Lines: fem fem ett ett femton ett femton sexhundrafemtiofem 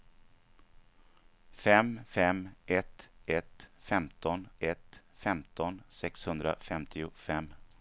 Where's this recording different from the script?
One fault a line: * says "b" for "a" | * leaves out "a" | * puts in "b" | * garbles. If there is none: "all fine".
all fine